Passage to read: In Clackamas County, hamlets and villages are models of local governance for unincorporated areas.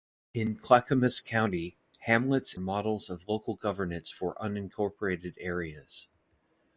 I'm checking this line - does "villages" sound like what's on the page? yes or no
no